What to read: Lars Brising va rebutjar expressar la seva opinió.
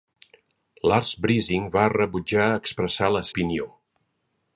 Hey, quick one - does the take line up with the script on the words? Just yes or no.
no